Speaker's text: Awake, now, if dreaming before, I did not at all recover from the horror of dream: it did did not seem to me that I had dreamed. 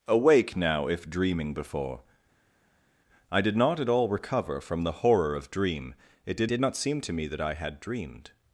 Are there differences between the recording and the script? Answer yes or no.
no